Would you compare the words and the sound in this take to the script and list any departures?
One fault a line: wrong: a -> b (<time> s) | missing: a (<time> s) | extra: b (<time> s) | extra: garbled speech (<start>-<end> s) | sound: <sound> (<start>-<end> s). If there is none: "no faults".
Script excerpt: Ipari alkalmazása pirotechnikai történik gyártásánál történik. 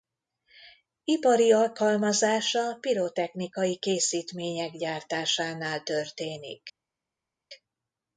wrong: történik -> készítmények (3.8 s)